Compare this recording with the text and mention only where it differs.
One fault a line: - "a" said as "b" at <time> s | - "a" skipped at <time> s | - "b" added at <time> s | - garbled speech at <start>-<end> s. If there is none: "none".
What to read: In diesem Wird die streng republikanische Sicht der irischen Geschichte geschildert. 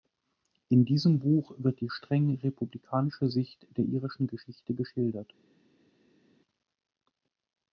- "Buch" added at 1.2 s